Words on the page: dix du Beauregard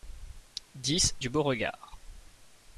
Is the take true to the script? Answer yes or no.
yes